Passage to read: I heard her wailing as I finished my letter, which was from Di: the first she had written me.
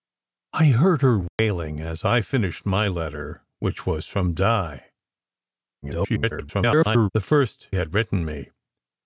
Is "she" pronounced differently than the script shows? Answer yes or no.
yes